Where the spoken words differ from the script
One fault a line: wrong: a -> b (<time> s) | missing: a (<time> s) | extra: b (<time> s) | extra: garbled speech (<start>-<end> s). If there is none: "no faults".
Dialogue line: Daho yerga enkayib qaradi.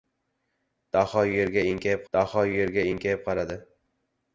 extra: daho yerga enkayib (2.1 s)